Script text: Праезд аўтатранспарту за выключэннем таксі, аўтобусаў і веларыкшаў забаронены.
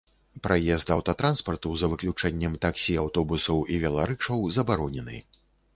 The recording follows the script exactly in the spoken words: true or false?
true